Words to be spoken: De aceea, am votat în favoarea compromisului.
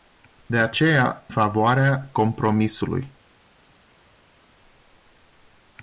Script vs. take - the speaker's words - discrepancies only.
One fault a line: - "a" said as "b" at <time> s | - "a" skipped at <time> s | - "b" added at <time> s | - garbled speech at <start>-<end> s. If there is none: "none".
- "am votat în" skipped at 1.2 s